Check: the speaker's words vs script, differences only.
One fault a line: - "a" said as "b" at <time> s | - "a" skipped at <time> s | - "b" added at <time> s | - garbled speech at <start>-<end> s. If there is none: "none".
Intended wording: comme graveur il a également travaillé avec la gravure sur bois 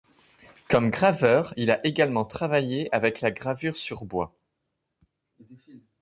none